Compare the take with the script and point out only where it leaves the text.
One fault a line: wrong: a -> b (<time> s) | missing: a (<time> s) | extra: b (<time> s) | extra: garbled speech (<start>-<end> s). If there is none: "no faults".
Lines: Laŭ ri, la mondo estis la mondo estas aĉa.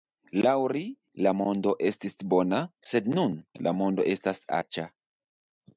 extra: bona sed nun (2.3 s)